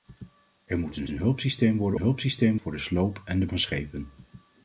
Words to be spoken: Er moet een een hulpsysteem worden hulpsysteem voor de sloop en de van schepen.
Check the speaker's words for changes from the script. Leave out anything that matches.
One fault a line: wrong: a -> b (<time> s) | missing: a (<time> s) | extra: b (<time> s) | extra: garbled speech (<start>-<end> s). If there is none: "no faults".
no faults